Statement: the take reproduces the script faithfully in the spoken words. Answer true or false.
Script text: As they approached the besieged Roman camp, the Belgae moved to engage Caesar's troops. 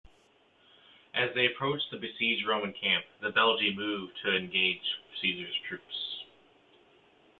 true